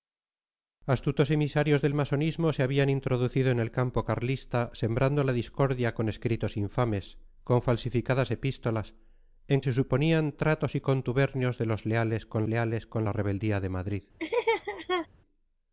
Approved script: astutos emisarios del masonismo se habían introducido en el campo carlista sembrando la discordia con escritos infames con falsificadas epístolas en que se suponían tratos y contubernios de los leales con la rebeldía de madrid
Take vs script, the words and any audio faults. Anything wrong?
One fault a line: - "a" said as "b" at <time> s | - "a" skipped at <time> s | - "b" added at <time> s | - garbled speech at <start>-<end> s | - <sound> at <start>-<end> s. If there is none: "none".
- "que" skipped at 9.6 s
- "leales con" added at 12.5 s
- laugh at 14.2-15.1 s